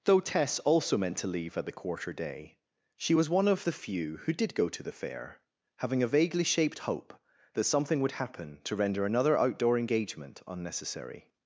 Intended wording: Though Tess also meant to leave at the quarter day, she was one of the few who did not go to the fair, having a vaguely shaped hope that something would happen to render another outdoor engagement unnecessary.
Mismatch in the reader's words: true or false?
true